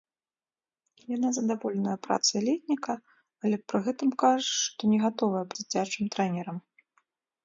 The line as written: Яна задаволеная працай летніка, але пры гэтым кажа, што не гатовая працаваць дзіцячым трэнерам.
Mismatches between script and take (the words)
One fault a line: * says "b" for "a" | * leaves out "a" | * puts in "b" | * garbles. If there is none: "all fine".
* leaves out "працаваць"